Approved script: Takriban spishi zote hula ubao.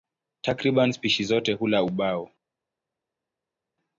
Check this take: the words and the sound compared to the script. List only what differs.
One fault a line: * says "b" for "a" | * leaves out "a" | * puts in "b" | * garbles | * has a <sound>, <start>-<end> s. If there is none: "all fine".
all fine